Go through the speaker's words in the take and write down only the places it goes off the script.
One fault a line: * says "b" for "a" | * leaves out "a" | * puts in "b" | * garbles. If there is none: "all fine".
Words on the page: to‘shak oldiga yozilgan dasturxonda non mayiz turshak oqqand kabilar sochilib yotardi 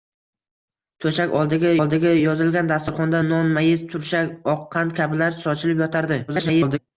* puts in "oldiga"
* garbles